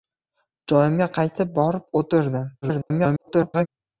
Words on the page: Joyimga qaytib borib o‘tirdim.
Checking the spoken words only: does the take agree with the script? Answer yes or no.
no